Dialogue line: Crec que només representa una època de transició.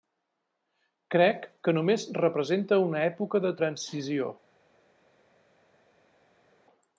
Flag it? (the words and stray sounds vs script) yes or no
no